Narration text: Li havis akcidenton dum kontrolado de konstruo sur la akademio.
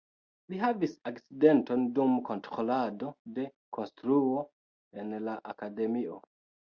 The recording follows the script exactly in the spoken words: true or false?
false